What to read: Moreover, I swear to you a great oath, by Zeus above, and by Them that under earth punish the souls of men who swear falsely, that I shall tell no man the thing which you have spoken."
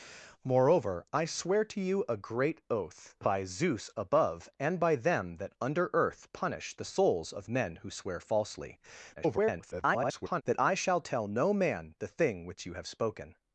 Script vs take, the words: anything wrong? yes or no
yes